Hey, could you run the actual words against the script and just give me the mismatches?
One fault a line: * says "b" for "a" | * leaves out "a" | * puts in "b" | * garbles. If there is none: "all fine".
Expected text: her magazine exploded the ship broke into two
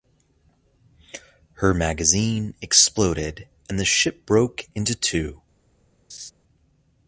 * puts in "and"